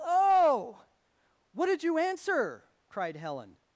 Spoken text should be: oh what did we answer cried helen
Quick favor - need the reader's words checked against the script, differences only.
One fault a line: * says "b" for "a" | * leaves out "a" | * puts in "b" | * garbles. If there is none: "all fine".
* says "you" for "we"